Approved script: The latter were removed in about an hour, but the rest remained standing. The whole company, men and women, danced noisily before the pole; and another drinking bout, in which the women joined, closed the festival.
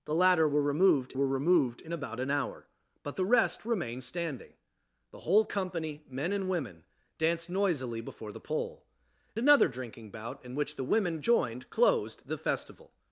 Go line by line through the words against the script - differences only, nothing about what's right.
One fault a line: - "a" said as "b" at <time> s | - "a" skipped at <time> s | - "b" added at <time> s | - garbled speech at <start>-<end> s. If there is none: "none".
- "were removed" added at 1.1 s
- "and" skipped at 8.9 s